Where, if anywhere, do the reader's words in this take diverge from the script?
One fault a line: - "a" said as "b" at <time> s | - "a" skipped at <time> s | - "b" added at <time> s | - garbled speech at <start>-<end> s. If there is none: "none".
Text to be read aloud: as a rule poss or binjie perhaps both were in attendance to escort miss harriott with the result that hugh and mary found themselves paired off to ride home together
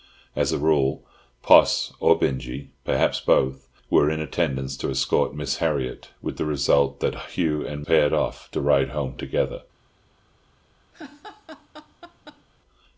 - "mary found themselves" skipped at 7.8 s